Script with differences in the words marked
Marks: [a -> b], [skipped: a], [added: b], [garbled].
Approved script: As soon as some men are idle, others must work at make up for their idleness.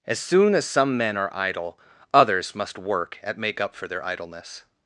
As soon as some men are idle, others must work at make up for their idleness.